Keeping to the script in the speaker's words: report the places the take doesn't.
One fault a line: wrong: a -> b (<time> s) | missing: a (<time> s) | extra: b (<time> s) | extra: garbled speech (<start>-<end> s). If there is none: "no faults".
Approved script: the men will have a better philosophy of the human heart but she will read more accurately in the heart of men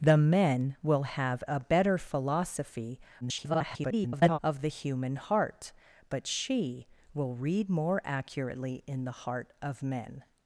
extra: garbled speech (3.2-4.4 s)